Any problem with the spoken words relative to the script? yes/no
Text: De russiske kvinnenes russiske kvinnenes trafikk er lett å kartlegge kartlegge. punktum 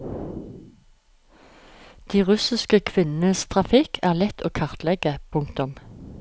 yes